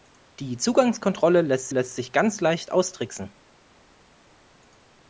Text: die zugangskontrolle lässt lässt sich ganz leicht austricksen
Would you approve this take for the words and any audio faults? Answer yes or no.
yes